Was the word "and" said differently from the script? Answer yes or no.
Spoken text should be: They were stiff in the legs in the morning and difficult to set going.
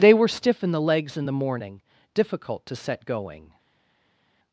yes